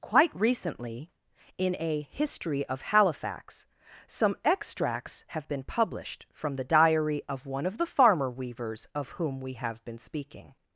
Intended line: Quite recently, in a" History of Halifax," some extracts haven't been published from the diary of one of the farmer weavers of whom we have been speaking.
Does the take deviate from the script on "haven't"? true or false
true